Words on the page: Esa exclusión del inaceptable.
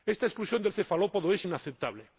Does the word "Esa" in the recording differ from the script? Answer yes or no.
yes